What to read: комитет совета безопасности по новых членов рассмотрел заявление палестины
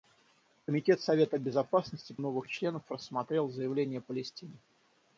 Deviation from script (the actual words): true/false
false